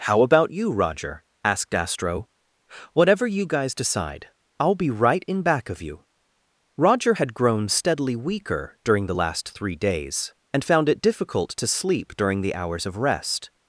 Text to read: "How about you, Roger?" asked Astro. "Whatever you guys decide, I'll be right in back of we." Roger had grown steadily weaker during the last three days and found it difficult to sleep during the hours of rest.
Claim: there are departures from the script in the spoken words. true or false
true